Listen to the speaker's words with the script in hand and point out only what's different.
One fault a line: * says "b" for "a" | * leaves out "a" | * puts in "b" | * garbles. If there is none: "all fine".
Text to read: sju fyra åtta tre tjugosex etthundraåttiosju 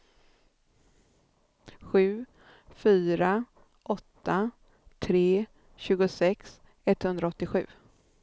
all fine